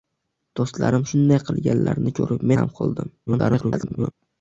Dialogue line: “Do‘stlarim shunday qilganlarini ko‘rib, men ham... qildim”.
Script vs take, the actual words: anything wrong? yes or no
yes